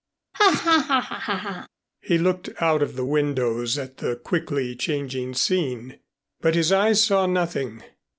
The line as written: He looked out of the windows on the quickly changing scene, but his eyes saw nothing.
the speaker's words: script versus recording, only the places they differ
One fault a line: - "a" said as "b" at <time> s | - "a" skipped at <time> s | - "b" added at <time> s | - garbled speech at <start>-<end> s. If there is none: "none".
- "on" said as "at" at 3.8 s